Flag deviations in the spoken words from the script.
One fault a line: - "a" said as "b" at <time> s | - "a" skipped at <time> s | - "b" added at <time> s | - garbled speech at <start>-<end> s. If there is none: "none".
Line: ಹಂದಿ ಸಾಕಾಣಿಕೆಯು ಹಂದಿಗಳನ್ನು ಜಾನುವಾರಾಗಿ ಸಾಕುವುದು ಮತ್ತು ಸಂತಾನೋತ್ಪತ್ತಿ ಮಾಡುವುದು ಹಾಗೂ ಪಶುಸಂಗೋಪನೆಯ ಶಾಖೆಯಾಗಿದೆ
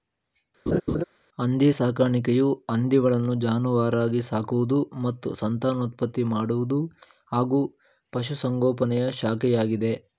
none